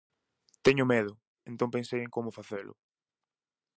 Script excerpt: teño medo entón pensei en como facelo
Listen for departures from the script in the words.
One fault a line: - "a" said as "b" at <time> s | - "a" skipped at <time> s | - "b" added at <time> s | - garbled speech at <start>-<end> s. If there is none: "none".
none